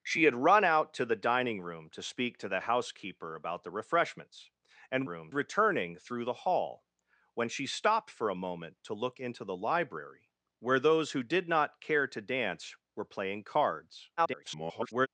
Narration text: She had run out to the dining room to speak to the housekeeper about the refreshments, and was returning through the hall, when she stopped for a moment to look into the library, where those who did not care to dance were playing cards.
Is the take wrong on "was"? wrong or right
wrong